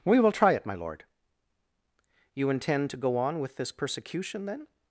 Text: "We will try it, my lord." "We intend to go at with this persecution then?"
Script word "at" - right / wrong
wrong